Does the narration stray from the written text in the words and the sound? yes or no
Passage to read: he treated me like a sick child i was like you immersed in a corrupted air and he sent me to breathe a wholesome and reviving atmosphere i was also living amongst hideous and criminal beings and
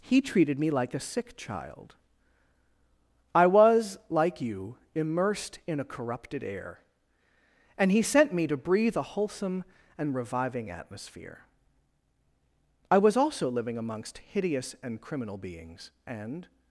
no